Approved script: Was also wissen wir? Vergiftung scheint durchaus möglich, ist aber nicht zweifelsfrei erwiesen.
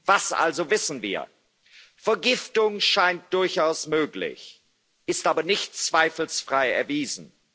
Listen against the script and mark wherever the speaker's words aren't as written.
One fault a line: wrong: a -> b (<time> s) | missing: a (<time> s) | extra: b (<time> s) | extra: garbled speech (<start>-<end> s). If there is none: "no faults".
no faults